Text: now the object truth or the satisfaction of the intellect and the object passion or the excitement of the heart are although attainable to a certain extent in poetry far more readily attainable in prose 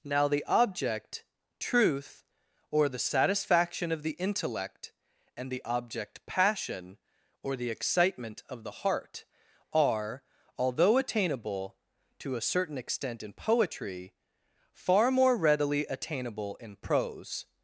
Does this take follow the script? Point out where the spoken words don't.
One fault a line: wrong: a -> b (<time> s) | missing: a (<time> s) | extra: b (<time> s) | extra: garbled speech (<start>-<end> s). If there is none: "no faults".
no faults